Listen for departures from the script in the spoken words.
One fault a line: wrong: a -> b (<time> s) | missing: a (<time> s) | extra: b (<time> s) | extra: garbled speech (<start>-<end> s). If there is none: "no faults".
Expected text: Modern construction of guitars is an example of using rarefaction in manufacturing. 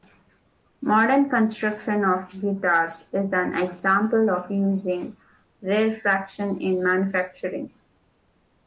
no faults